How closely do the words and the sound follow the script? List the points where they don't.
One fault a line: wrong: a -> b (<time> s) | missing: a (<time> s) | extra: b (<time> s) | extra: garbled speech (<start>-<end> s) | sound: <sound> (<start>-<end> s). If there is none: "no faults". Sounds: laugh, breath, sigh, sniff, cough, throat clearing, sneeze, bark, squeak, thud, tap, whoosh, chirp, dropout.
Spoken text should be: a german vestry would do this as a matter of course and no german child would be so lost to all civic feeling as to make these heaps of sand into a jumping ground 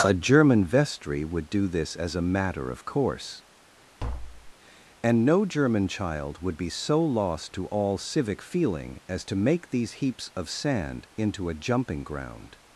sound: tap (4.0-4.5 s)